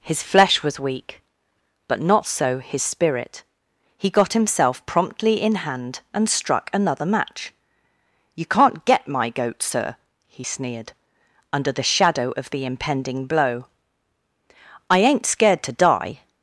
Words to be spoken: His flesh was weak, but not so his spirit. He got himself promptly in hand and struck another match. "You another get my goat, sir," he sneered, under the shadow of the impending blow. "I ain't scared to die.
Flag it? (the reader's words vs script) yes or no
yes